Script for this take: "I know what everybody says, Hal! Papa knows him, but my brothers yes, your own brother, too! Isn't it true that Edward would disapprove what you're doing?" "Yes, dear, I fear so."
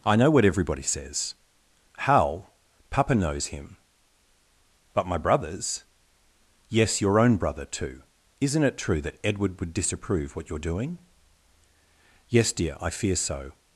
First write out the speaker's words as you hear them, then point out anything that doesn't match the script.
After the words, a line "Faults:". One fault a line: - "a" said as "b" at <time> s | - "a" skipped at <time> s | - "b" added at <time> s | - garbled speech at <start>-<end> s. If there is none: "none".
"I know what everybody says, Hal! Papa knows him, but my brothers yes, your own brother, too! Isn't it true that Edward would disapprove what you're doing?" "Yes, dear, I fear so."
Faults:
none